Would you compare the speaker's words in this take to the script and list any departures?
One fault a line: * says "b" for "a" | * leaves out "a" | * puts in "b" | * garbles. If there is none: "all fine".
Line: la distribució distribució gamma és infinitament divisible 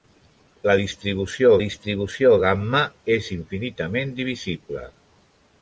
all fine